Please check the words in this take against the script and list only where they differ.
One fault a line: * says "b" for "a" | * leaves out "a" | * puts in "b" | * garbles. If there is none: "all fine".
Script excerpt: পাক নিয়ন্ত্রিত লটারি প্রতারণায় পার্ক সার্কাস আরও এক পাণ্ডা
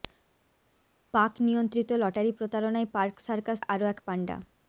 all fine